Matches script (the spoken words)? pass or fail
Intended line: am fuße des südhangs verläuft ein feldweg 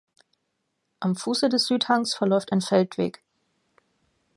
pass